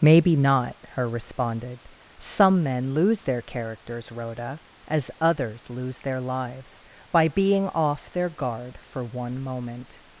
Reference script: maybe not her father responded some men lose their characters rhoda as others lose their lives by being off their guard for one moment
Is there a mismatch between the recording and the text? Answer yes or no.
yes